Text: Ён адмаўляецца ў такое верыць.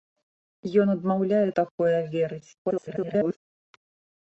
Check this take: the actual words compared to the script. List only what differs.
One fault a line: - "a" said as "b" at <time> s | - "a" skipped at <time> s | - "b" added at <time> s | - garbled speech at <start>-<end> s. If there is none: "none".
- "ў" skipped at 1.5 s
- garbled speech at 2.6-3.4 s